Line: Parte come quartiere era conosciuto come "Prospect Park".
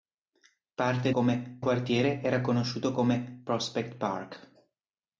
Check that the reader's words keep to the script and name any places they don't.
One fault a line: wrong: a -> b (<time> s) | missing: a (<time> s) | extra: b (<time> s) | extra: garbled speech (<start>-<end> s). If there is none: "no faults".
no faults